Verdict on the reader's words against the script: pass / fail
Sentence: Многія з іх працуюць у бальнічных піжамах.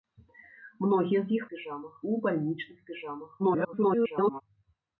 fail